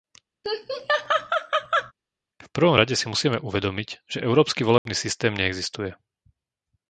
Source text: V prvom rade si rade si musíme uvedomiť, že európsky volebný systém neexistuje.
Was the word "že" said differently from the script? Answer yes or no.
no